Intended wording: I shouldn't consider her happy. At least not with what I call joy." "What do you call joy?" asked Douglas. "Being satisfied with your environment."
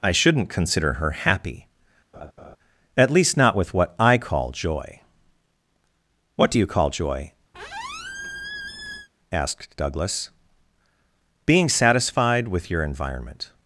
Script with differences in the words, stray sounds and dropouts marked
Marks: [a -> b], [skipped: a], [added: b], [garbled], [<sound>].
I shouldn't consider her happy. [laugh] At least not with what I call joy." "What do you call joy?" [squeak] asked Douglas. "Being satisfied with your environment."